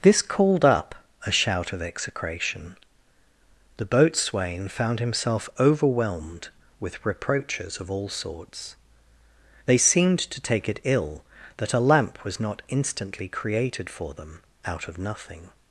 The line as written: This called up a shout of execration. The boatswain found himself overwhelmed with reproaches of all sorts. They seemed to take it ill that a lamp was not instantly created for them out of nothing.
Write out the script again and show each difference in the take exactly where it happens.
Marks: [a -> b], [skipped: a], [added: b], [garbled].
This called up a shout of execration. The boatswain found himself overwhelmed with reproaches of all sorts. They seemed to take it ill that a lamp was not instantly created for them out of nothing.